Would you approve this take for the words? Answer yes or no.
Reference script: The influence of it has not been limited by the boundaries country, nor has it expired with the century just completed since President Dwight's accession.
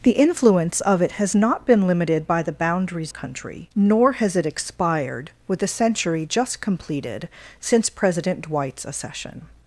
yes